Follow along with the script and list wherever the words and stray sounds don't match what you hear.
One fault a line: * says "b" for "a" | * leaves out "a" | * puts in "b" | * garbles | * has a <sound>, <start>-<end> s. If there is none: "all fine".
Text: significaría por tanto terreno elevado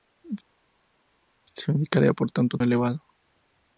* leaves out "terreno"